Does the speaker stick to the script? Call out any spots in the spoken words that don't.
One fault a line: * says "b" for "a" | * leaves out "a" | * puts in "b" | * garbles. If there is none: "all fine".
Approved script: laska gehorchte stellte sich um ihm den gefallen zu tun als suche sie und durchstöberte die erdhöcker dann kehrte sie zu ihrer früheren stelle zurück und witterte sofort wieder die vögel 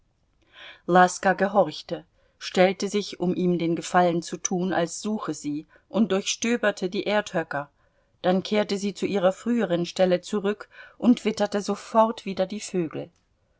all fine